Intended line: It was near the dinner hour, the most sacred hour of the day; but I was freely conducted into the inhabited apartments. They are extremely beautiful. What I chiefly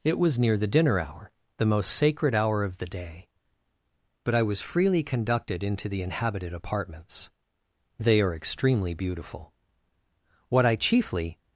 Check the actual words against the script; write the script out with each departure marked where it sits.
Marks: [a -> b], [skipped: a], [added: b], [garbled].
It was near the dinner hour, the most sacred hour of the day; but I was freely conducted into the inhabited apartments. They are extremely beautiful. What I chiefly